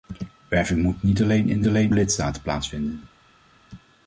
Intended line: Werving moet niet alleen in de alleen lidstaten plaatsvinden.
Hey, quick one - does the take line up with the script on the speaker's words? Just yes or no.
yes